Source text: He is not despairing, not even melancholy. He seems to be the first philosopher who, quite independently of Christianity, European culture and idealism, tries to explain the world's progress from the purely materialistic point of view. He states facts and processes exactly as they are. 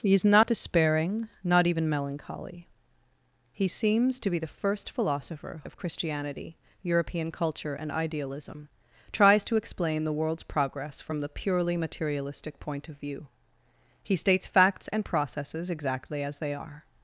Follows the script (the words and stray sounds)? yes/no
no